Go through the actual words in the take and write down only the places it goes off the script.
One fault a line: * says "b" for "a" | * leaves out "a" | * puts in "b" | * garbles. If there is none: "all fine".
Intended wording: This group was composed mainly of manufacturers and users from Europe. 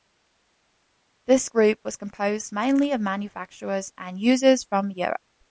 all fine